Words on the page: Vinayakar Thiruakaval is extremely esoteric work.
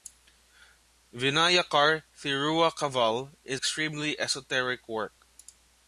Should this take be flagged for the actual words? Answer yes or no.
no